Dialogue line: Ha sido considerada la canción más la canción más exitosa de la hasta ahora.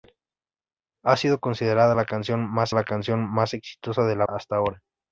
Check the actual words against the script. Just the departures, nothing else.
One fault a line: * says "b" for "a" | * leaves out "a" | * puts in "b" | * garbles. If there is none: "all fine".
all fine